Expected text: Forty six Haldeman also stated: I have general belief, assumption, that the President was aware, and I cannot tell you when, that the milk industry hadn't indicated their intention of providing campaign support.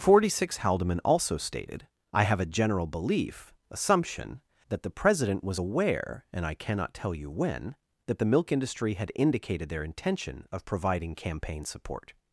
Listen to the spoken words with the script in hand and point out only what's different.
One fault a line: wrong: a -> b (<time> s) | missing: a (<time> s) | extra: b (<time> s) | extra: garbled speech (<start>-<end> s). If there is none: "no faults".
extra: a (2.4 s)
wrong: hadn't -> had (8.9 s)